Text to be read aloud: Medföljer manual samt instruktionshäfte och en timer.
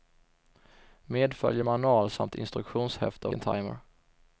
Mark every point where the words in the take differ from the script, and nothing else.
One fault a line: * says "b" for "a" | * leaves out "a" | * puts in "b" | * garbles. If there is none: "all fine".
* leaves out "och"